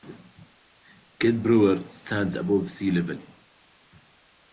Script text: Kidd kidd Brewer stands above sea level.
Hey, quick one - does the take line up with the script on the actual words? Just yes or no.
no